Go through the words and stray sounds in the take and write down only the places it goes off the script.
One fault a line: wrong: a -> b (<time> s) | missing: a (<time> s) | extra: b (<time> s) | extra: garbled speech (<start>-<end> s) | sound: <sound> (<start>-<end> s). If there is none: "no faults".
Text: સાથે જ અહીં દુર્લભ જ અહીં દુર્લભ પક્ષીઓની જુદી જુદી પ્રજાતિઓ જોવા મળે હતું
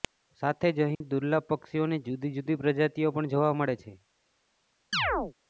sound: dropout (0.9-1.0 s)
missing: જ અહીં દુર્લભ (1.4 s)
extra: પણ (3.1 s)
wrong: હતું -> છે (3.8 s)
sound: chirp (4.9-5.3 s)